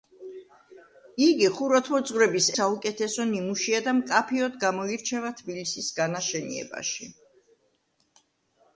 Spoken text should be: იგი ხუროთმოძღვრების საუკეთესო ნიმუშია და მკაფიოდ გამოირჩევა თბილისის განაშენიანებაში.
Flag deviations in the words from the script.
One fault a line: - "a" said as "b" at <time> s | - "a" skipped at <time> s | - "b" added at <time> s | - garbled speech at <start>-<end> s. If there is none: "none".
none